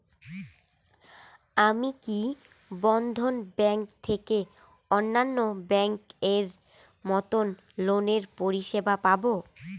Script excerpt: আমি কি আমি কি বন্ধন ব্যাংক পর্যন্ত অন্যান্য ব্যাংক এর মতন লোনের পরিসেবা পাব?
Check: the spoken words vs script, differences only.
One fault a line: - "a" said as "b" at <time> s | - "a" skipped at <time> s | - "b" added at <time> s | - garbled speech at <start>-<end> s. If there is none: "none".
- "আমি কি" skipped at 2.2 s
- "পর্যন্ত" said as "থেকে" at 4.0 s